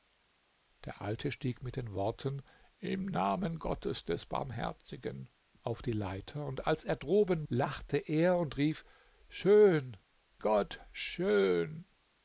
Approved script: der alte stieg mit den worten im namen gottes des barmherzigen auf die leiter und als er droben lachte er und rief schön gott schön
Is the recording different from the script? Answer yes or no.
no